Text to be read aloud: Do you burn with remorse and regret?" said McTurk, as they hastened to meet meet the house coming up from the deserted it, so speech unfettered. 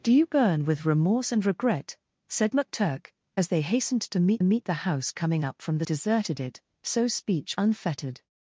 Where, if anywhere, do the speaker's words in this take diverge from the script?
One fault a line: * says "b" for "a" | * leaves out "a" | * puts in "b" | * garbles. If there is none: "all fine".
all fine